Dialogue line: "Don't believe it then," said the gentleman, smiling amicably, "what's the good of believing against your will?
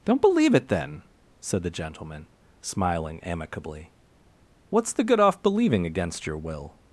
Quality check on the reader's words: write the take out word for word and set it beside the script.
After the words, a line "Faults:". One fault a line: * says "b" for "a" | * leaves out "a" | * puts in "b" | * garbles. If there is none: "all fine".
"Don't believe it then," said the gentleman, smiling amicably, "what's the good off believing against your will?
Faults:
* says "off" for "of"